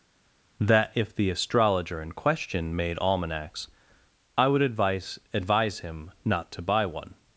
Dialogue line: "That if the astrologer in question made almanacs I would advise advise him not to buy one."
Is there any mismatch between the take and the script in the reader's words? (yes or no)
no